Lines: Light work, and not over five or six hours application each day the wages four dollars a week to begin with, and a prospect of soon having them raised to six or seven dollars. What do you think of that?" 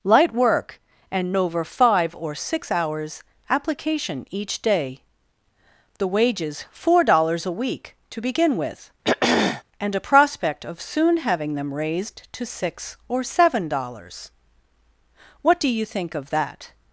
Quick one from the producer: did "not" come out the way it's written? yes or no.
no